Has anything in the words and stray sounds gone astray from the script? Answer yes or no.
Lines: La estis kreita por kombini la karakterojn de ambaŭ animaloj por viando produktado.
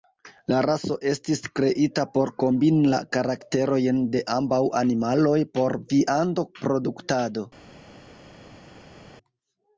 yes